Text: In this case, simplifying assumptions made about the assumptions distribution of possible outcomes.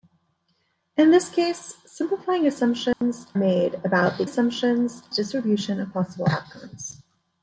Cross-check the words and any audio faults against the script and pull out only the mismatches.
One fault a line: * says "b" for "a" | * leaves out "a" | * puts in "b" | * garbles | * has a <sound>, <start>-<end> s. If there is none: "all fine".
* has a dropout, 2.9-3.0 s